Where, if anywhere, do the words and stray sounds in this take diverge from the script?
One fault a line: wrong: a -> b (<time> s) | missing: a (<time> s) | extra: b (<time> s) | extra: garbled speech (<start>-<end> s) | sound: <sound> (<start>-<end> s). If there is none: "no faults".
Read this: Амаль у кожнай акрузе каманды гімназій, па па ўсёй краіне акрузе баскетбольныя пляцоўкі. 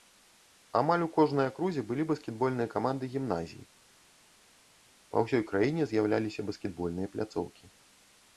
extra: былі баскетбольныя (1.9 s)
missing: па (5.3 s)
wrong: акрузе -> з'яўляліся (5.9 s)